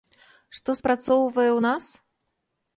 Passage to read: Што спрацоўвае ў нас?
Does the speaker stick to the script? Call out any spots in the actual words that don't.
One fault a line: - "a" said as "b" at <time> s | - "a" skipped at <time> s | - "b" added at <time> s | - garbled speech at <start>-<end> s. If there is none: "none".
none